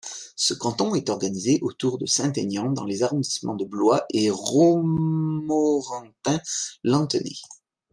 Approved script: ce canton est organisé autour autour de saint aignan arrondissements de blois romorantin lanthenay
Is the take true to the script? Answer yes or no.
no